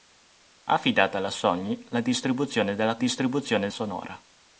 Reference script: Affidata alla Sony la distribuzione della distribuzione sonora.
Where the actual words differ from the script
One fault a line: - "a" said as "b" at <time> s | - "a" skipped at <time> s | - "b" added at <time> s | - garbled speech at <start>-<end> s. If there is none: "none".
none